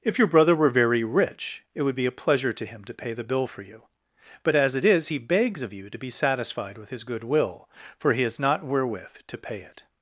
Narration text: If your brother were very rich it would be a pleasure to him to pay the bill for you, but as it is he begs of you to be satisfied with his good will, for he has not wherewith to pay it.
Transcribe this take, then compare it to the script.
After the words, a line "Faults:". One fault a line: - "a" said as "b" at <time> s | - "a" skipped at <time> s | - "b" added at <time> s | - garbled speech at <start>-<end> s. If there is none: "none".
If your brother were very rich it would be a pleasure to him to pay the bill for you, but as it is he begs of you to be satisfied with his good will, for he has not wherewith to pay it.
Faults:
none